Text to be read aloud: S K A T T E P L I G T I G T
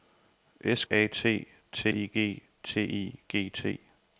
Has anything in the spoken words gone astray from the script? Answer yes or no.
yes